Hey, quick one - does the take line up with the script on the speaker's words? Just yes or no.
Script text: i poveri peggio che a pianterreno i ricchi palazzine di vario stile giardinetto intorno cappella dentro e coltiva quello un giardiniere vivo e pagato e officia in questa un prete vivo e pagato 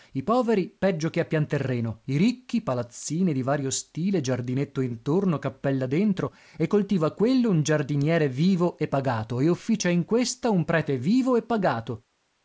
yes